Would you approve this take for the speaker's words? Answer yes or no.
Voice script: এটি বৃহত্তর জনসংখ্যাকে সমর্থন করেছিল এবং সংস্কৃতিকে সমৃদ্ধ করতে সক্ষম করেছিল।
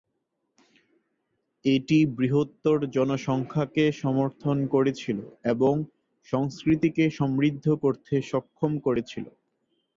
yes